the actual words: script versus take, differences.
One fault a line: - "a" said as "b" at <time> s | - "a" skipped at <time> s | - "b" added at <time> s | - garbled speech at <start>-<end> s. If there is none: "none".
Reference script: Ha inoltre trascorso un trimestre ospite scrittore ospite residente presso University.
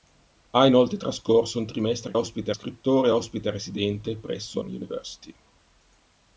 none